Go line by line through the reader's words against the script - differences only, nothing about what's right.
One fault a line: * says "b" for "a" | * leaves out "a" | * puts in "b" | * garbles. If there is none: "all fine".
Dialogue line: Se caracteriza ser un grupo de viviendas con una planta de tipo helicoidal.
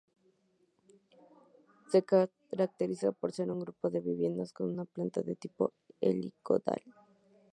* puts in "por"